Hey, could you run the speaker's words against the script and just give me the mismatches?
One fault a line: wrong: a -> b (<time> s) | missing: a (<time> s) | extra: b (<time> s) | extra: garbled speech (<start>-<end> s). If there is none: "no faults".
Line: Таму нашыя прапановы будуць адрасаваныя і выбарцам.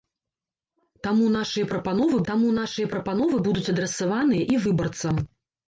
extra: таму нашыя прапановы (2.3 s)